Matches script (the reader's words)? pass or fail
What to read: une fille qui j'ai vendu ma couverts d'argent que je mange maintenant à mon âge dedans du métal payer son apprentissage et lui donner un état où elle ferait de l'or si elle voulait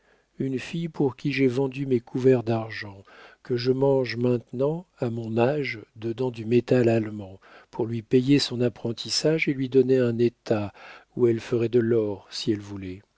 fail